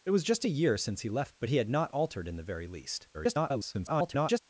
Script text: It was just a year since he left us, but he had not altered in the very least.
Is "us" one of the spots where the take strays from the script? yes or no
yes